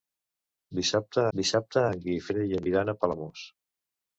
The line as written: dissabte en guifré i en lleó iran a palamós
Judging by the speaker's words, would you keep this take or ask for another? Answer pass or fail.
fail